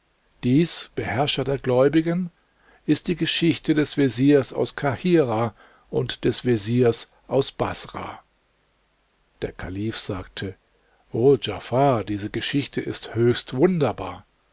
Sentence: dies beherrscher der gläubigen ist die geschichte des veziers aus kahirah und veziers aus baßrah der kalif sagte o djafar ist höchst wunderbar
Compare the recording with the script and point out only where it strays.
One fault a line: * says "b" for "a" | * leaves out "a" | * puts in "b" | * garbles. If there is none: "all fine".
* puts in "des"
* puts in "diese geschichte"